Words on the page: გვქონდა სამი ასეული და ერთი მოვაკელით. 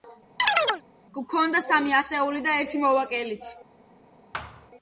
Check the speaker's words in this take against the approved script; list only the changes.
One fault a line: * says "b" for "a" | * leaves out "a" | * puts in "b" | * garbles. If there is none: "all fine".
all fine